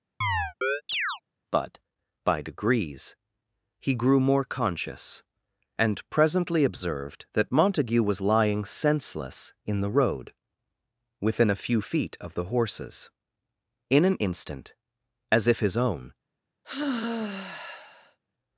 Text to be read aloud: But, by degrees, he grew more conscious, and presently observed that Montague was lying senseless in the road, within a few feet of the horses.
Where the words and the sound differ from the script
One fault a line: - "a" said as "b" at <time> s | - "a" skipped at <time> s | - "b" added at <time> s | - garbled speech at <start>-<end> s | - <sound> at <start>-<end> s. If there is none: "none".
- chirp at 0.2-1.2 s
- "In an instant as if his own" added at 13.9 s
- sigh at 16.6-18.2 s